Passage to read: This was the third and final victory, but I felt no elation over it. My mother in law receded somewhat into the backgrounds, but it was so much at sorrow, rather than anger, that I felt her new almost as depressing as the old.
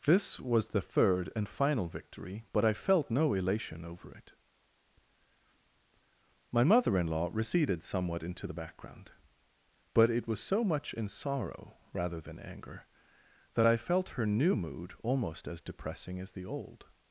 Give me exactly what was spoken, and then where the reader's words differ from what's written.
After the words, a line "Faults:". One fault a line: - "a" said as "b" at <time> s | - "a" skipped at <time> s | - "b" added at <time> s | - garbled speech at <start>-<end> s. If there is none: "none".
This was the third and final victory, but I felt no elation over it. My mother in law receded somewhat into the background, but it was so much in sorrow, rather than anger, that I felt her new mood almost as depressing as the old.
Faults:
- "backgrounds" said as "background" at 8.5 s
- "at" said as "in" at 10.9 s
- "mood" added at 14.5 s